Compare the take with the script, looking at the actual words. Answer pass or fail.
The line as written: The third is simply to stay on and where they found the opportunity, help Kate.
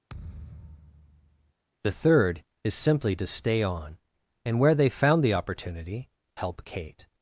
pass